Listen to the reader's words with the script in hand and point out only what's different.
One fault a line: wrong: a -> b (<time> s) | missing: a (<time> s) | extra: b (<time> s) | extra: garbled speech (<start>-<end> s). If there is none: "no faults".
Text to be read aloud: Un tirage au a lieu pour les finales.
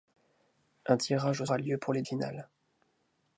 no faults